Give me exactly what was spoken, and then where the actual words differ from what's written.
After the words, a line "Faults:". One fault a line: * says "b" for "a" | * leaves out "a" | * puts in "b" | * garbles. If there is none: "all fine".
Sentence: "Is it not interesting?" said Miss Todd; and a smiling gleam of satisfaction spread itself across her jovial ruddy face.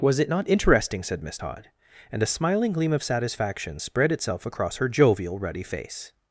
"Was it not interesting?" said Miss Todd; and a smiling gleam of satisfaction spread itself across her jovial ruddy face.
Faults:
* says "Was" for "Is"